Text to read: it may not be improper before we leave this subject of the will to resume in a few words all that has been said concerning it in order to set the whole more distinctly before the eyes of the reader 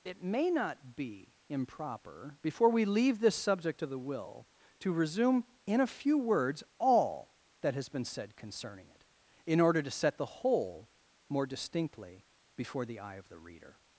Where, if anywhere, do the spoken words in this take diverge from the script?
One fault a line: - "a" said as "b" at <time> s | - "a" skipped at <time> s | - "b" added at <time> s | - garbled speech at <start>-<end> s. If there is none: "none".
- "eyes" said as "eye" at 13.0 s